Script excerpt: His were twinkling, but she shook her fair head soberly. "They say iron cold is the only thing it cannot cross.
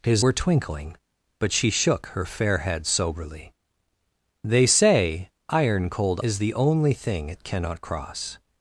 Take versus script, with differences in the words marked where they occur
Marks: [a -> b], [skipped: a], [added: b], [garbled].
His were twinkling, but she shook her fair head soberly. "They say iron cold is the only thing it cannot cross.